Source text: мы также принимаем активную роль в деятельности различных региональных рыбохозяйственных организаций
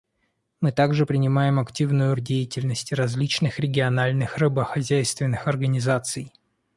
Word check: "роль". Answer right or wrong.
wrong